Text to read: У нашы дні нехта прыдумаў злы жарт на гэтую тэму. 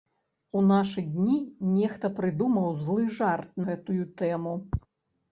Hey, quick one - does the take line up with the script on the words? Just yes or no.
no